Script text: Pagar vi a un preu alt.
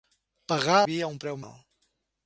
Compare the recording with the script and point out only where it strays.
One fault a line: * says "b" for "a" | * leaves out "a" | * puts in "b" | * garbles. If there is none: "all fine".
all fine